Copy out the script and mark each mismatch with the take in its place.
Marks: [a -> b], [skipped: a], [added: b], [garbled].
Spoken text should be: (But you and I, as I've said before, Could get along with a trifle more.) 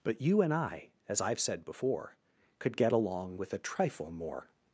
(But you and I, as I've said before, Could get along with a trifle more.)